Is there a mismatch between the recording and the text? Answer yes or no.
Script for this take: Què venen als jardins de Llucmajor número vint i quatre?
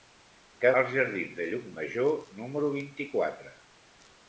yes